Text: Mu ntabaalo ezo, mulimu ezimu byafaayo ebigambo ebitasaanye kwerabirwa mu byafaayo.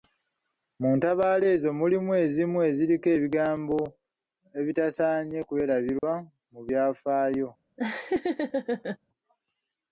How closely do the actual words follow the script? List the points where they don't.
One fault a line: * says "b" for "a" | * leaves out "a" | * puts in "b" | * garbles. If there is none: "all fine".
* says "eziriko" for "byafaayo"